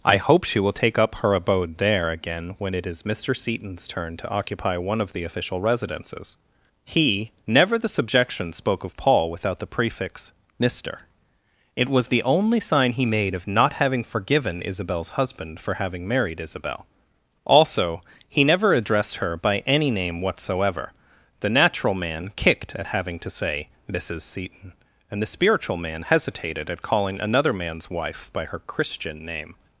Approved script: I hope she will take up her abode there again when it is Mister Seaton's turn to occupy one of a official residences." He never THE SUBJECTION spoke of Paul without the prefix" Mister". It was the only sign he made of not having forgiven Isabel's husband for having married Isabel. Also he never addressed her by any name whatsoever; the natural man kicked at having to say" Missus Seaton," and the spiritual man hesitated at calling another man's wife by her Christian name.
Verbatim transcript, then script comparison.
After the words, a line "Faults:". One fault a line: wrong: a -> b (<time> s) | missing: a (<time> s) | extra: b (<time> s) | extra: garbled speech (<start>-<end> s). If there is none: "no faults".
I hope she will take up her abode there again when it is Mister Seaton's turn to occupy one of the official residences." He never THE SUBJECTION spoke of Paul without the prefix" Mister". It was the only sign he made of not having forgiven Isabel's husband for having married Isabel. Also he never addressed her by any name whatsoever; the natural man kicked at having to say" Missus Seaton," and the spiritual man hesitated at calling another man's wife by her Christian name.
Faults:
wrong: a -> the (5.1 s)